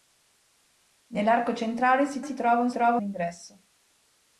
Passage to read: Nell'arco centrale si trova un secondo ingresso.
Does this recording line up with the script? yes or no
no